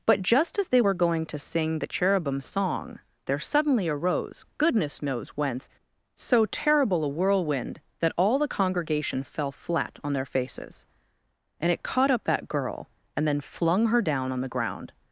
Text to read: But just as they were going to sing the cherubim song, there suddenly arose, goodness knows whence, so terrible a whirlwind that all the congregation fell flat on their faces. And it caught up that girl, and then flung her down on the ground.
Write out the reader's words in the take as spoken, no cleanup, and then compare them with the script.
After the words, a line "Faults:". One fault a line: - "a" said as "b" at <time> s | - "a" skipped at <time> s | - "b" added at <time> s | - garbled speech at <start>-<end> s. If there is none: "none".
But just as they were going to sing the cherubim song, there suddenly arose, goodness knows whence, so terrible a whirlwind that all the congregation fell flat on their faces. And it caught up that girl, and then flung her down on the ground.
Faults:
none